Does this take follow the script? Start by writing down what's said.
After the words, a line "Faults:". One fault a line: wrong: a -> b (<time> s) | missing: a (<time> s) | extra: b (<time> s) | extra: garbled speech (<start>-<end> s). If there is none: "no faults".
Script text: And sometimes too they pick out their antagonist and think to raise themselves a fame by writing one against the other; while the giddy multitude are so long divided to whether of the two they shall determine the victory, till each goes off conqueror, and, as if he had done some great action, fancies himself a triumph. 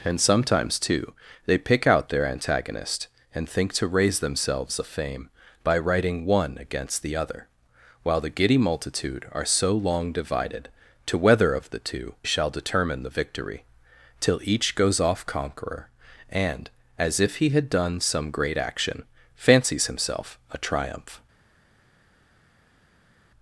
And sometimes too they pick out their antagonist and think to raise themselves a fame by writing one against the other; while the giddy multitude are so long divided to whether of the two shall determine the victory, till each goes off conqueror, and, as if he had done some great action, fancies himself a triumph.
Faults:
missing: they (12.2 s)